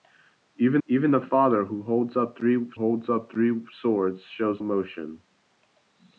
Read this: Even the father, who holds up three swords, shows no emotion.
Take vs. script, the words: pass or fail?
fail